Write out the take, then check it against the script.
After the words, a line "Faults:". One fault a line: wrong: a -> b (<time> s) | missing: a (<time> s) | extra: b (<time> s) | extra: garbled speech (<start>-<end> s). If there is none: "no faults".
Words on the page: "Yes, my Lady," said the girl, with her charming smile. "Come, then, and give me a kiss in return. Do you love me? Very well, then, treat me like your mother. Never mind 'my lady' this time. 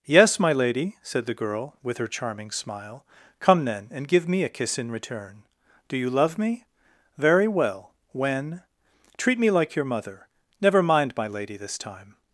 "Yes, my Lady," said the girl, with her charming smile. "Come, then, and give me a kiss in return. Do you love me? Very well, when, treat me like your mother. Never mind 'my lady' this time.
Faults:
wrong: then -> when (8.1 s)